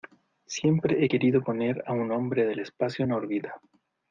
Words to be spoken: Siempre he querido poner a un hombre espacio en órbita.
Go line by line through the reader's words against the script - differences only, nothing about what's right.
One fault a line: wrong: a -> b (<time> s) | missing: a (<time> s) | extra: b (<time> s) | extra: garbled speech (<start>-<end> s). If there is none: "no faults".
extra: del (2.4 s)